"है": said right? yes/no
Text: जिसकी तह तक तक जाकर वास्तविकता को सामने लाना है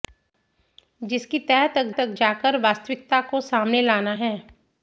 yes